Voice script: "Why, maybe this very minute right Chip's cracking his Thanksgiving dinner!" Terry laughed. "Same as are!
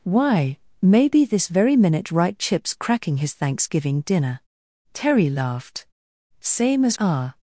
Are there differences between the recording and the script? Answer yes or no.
no